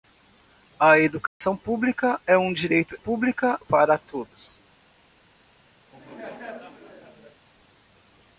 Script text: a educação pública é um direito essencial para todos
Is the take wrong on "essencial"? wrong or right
wrong